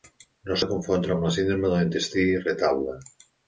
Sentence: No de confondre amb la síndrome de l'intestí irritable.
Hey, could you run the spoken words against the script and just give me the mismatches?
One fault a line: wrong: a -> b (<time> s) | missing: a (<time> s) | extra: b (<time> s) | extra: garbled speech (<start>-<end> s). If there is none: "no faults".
no faults